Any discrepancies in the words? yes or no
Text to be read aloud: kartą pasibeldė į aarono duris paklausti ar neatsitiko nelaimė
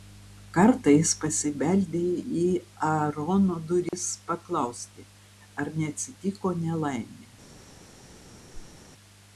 yes